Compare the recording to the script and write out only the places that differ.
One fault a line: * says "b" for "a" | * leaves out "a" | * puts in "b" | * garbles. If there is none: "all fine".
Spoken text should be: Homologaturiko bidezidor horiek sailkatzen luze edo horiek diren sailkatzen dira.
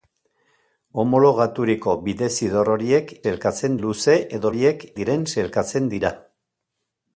all fine